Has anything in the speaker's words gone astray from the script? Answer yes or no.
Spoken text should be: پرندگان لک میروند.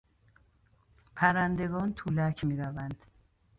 yes